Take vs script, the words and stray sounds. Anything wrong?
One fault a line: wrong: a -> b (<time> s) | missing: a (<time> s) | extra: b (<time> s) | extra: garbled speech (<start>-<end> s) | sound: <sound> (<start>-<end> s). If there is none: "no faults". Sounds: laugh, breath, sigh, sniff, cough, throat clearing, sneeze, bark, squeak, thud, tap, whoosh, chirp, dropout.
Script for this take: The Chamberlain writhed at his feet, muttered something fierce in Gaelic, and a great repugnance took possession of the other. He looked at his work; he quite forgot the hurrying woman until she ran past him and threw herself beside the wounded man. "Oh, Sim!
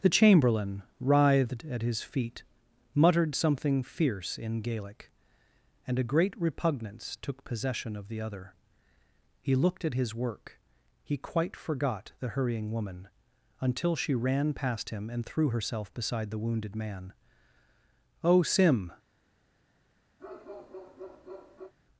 sound: bark (20.2-21.7 s)